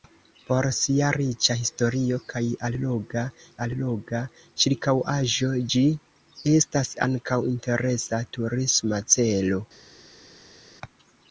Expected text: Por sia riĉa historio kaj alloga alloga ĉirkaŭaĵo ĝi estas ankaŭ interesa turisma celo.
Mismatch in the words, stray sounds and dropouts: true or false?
false